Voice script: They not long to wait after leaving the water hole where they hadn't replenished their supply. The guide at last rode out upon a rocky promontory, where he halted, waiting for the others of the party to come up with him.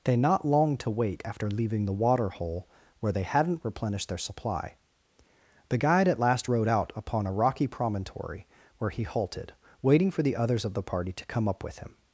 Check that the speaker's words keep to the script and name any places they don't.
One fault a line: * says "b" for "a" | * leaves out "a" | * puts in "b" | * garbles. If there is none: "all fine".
all fine